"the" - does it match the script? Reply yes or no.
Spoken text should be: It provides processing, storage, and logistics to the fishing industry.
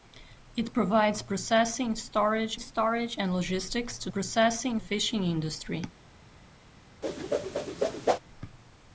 no